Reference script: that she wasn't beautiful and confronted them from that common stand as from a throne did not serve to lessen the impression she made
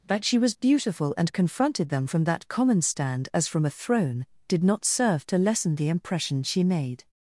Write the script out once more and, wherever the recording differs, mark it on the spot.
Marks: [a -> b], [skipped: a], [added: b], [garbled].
that she [wasn't -> was] beautiful and confronted them from that common stand as from a throne did not serve to lessen the impression she made